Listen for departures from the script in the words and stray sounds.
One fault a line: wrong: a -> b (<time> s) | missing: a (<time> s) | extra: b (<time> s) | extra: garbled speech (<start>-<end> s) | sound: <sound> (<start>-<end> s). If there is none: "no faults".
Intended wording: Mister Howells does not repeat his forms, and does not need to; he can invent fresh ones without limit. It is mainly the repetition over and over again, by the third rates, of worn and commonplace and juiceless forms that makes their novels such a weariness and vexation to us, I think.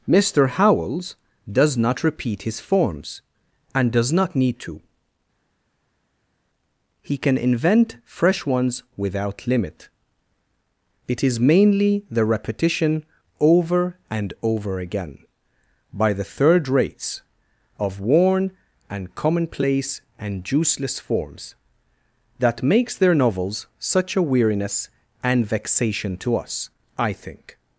no faults